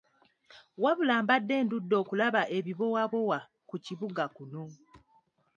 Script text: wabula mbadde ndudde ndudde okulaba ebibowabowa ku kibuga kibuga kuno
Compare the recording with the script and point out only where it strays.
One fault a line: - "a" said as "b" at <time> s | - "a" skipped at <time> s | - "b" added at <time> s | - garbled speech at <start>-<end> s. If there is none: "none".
- "ndudde" skipped at 1.9 s
- "kibuga" skipped at 4.2 s